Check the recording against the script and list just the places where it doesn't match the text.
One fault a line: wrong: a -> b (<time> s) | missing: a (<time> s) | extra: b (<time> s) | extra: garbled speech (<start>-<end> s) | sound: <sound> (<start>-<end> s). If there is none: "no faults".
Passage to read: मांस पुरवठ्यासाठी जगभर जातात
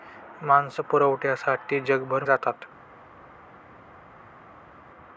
no faults